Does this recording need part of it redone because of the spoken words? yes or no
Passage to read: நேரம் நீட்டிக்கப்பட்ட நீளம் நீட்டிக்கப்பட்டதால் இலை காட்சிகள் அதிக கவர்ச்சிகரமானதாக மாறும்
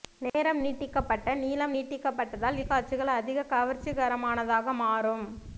yes